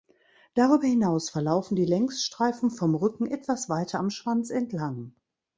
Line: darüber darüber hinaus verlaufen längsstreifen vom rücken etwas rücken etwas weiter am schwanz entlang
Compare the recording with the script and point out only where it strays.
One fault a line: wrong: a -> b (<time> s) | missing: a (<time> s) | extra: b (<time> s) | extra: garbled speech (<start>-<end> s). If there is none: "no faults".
missing: darüber (0.9 s)
extra: die (1.8 s)
missing: rücken etwas (3.7 s)